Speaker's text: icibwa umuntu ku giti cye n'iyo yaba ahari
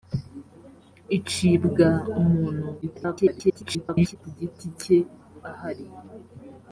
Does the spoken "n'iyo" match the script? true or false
false